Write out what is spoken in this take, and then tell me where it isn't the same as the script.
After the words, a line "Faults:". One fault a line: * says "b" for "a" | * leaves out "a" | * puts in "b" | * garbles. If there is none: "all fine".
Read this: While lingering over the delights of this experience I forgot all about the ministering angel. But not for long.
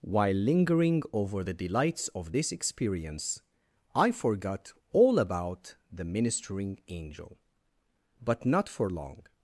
While lingering over the delights of this experience I forgot all about the ministering angel. But not for long.
Faults:
all fine